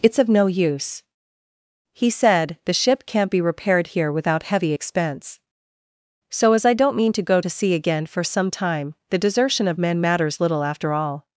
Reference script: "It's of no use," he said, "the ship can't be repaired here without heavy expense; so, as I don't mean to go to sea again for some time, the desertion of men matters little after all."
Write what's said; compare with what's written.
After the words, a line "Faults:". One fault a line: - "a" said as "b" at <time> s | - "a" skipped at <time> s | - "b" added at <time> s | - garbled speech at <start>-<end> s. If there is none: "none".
"It's of no use," he said, "the ship can't be repaired here without heavy expense; so, as I don't mean to go to sea again for some time, the desertion of men matters little after all."
Faults:
none